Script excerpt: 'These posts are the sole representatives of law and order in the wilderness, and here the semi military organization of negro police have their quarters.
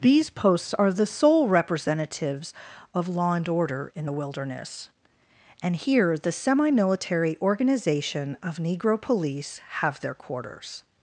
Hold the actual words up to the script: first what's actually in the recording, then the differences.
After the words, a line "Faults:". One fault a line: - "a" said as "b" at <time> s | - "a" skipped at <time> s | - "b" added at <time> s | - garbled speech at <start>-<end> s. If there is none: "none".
'These posts are the sole representatives of law and order in the wilderness, and here the semi military organization of negro police have their quarters.
Faults:
none